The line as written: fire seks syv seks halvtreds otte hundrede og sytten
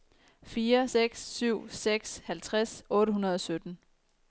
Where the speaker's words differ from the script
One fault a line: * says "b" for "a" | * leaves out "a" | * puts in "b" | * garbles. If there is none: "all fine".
all fine